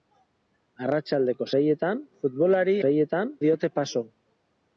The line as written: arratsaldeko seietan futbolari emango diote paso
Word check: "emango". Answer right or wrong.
wrong